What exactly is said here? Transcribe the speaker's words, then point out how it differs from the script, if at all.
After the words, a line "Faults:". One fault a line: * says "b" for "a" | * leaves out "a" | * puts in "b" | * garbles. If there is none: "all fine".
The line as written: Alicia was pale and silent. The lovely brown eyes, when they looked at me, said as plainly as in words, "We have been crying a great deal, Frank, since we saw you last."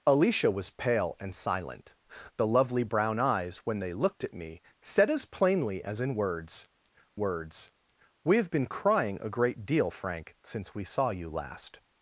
Alicia was pale and silent. The lovely brown eyes, when they looked at me, said as plainly as in words words, "We have been crying a great deal, Frank, since we saw you last."
Faults:
* puts in "words"